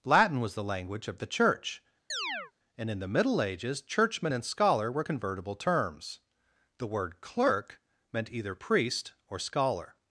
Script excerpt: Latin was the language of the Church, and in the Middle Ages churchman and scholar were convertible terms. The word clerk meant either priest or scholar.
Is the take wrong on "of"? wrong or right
right